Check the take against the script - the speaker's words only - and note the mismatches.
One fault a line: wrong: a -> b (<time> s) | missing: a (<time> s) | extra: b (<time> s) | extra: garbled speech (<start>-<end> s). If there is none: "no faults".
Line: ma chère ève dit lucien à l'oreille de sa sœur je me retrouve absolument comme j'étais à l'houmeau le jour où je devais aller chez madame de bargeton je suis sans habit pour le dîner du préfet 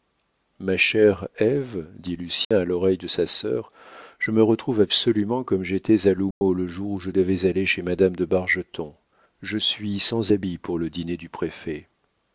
no faults